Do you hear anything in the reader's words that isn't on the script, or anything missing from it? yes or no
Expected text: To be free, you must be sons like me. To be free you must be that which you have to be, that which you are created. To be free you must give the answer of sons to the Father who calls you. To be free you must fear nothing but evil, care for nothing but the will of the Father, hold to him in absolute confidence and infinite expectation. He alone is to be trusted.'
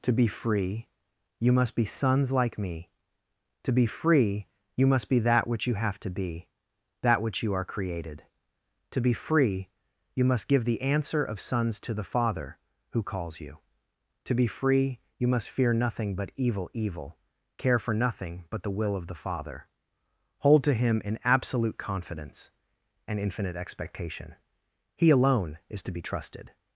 yes